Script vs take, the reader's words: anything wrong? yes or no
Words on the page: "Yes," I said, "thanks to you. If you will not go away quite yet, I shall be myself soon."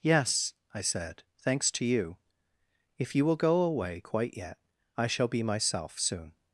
yes